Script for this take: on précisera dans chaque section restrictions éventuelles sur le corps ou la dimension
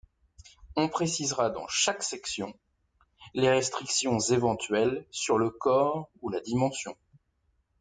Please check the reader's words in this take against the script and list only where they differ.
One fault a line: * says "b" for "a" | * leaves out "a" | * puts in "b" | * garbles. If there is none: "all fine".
* puts in "les"